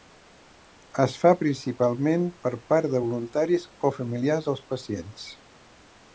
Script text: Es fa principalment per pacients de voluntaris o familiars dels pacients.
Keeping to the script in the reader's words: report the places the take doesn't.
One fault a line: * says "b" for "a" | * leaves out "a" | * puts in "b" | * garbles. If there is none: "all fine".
* says "part" for "pacients"